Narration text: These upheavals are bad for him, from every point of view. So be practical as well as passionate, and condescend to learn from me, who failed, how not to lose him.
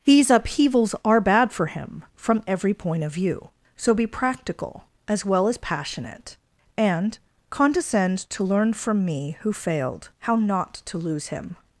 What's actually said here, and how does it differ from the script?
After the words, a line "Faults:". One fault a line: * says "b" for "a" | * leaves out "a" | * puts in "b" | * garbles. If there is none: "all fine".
These upheavals are bad for him, from every point of view. So be practical as well as passionate, and condescend to learn from me, who failed, how not to lose him.
Faults:
all fine